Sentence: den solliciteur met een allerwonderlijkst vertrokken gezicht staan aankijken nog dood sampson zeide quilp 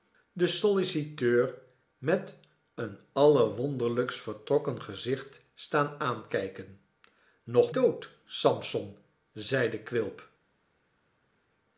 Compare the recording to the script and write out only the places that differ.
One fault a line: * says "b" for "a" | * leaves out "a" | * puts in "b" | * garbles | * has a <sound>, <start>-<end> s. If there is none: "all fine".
all fine